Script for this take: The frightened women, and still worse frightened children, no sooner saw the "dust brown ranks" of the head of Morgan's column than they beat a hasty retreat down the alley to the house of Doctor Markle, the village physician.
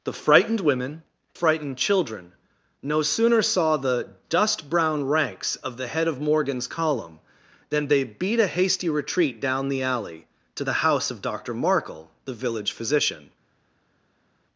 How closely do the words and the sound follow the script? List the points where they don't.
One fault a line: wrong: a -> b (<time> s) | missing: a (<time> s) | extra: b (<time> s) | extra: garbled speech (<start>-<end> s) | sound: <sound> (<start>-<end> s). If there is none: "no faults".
missing: and still worse (1.0 s)